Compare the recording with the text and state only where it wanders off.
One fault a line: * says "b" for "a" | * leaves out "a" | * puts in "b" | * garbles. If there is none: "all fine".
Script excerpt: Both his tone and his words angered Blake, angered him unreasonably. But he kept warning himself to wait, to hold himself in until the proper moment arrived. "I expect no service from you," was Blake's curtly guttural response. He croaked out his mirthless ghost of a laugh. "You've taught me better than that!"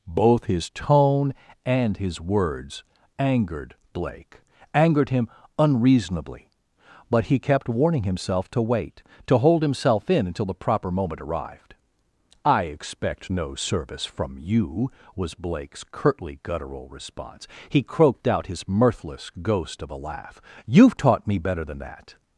all fine